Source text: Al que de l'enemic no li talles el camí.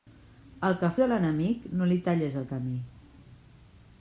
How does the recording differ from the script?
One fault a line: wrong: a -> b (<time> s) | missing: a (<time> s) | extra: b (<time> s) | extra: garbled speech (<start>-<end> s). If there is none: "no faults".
no faults